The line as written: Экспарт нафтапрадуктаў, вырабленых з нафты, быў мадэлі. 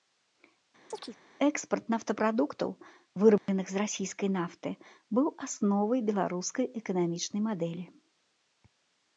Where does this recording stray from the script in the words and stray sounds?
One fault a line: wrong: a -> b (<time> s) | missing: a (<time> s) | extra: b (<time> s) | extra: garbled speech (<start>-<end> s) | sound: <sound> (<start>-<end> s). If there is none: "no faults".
sound: chirp (0.9-1.2 s)
sound: dropout (3.4-3.5 s)
extra: расійскай (3.8 s)
extra: асновай беларускай эканамічнай (5.5 s)